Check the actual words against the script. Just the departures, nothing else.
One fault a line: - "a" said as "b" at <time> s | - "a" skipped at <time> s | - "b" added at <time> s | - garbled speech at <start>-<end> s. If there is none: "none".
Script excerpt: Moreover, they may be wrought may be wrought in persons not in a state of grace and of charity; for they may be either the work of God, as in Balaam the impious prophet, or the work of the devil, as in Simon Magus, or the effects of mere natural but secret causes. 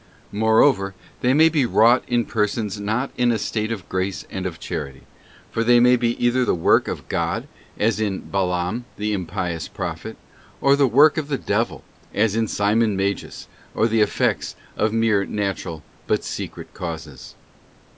- "may be wrought" skipped at 2.1 s